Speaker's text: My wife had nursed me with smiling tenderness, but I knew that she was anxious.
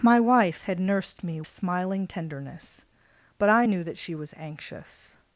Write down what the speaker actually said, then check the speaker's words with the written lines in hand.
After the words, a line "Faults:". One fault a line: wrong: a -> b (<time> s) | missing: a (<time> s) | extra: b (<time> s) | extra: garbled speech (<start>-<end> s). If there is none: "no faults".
My wife had nursed me smiling tenderness, but I knew that she was anxious.
Faults:
missing: with (1.4 s)